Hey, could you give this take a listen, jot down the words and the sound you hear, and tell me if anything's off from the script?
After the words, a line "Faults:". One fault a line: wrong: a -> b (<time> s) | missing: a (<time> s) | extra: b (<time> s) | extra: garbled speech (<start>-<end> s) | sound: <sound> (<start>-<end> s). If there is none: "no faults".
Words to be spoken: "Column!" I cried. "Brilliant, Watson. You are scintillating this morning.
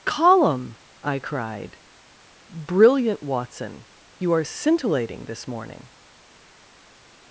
"Column!" I cried. "Brilliant, Watson. You are scintillating this morning.
Faults:
no faults